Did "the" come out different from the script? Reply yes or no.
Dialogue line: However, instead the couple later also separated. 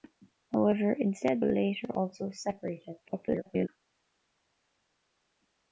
yes